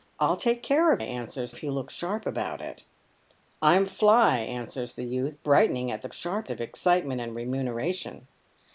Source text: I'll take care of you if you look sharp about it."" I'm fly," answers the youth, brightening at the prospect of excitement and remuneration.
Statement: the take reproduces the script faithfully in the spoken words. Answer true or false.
false